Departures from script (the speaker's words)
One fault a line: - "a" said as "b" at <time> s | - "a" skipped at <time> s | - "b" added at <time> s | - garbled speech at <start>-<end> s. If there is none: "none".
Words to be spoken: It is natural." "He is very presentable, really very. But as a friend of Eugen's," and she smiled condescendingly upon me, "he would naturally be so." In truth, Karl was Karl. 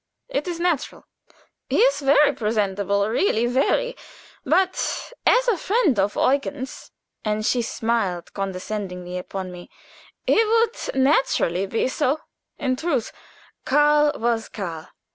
none